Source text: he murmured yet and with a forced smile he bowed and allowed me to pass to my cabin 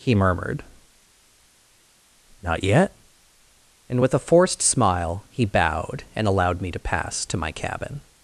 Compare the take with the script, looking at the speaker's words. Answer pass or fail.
fail